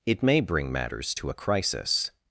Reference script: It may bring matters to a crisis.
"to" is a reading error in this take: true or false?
false